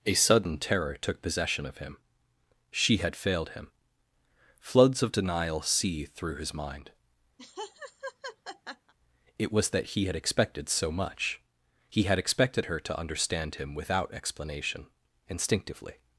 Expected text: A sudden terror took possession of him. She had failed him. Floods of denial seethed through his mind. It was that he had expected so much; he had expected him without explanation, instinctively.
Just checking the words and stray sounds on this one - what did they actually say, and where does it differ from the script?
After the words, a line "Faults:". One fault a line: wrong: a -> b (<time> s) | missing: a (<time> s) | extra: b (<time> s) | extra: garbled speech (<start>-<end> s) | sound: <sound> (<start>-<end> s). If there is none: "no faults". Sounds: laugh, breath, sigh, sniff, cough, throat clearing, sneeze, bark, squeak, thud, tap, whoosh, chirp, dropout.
A sudden terror took possession of him. She had failed him. Floods of denial seethed through his mind. It was that he had expected so much; he had expected her to understand him without explanation, instinctively.
Faults:
sound: laugh (7.4-8.9 s)
extra: her to understand (12.7 s)